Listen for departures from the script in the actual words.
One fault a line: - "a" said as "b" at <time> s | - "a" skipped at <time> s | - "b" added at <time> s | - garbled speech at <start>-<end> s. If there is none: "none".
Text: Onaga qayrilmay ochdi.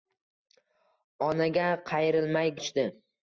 none